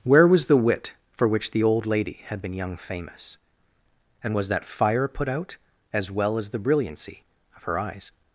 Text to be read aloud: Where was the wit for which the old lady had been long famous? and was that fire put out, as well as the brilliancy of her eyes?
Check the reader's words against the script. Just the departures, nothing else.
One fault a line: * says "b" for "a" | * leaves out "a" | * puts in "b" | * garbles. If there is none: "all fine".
* says "young" for "long"